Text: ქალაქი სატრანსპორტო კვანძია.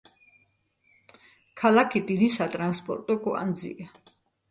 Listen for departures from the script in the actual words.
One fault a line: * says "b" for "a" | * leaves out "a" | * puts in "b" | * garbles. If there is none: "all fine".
* puts in "დიდი"